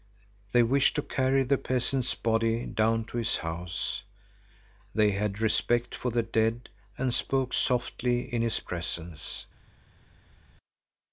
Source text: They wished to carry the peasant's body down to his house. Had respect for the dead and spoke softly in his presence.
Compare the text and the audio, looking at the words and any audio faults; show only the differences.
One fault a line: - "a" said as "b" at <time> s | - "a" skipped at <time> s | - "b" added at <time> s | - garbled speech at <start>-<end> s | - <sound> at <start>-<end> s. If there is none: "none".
- "They" added at 5.0 s